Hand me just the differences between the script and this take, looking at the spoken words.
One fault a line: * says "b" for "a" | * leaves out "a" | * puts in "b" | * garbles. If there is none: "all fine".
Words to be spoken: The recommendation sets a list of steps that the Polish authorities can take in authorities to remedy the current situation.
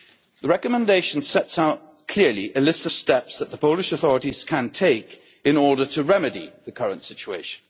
* puts in "out clearly"
* says "order" for "authorities"